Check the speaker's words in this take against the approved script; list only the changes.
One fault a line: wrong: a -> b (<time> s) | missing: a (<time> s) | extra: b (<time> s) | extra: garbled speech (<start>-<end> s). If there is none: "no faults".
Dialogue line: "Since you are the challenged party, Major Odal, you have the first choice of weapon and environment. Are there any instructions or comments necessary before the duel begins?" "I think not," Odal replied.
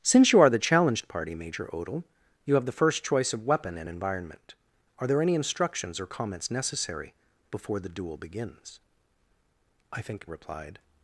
missing: not Odal (10.3 s)